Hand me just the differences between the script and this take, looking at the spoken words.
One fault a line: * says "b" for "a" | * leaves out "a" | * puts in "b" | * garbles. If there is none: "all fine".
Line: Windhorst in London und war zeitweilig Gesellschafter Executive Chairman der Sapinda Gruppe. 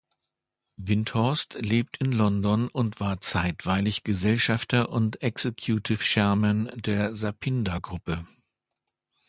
* puts in "lebt"
* puts in "und"